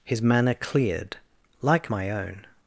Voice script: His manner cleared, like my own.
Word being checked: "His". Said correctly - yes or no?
yes